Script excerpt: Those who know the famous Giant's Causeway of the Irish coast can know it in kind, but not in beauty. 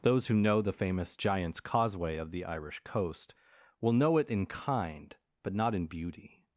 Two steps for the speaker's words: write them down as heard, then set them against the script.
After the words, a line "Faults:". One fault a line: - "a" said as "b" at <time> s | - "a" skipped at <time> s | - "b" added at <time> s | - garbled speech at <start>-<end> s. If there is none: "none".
Those who know the famous Giant's Causeway of the Irish coast will know it in kind, but not in beauty.
Faults:
- "can" said as "will" at 3.8 s